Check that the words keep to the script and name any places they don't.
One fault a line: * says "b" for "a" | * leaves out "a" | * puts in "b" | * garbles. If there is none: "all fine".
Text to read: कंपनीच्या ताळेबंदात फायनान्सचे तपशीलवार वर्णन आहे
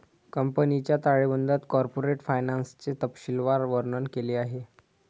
* puts in "कॉर्पोरेट"
* puts in "केले"